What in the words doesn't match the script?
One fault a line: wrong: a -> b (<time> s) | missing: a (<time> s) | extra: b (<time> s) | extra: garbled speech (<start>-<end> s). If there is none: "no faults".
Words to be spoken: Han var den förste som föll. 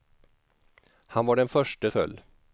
missing: som (1.9 s)